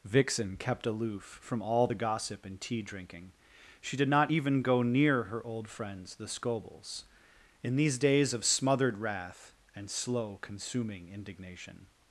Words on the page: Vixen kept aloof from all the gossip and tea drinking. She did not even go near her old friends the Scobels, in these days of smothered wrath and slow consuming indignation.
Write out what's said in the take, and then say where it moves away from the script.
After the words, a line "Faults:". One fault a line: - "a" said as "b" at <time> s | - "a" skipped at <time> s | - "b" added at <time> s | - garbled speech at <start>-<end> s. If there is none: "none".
Vixen kept aloof from all the gossip and tea drinking. She did not even go near her old friends the Scobels, in these days of smothered wrath and slow consuming indignation.
Faults:
none